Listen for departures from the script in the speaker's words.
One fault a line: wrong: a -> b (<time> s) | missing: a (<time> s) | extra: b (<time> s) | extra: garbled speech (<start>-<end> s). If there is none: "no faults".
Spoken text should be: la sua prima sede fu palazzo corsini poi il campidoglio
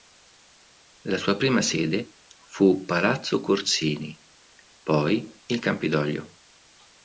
no faults